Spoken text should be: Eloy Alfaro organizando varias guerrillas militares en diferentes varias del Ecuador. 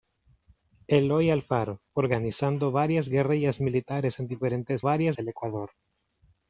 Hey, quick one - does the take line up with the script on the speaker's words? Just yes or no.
yes